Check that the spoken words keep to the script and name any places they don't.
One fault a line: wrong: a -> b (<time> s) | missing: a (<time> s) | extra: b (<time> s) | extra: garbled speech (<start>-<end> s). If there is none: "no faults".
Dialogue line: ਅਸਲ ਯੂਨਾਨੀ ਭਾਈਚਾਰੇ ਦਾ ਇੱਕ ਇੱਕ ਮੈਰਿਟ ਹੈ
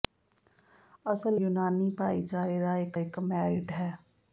no faults